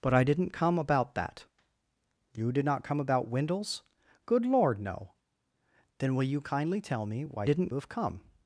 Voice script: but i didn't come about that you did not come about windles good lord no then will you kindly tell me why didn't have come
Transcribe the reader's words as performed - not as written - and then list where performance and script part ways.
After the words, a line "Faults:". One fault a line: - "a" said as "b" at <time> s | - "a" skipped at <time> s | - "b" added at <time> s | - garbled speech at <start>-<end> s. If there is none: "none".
but i didn't come about that you did not come about windles good lord no then will you kindly tell me why didn't have come
Faults:
none